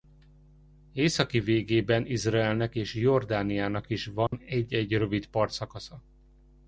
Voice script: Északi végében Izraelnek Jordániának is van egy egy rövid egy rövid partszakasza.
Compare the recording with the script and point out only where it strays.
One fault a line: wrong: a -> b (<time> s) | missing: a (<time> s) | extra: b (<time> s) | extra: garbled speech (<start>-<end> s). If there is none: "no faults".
extra: és (2.8 s)
missing: egy rövid (5.3 s)